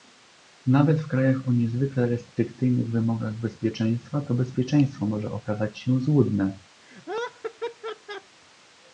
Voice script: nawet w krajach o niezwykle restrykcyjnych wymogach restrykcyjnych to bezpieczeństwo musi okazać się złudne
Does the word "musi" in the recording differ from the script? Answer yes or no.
yes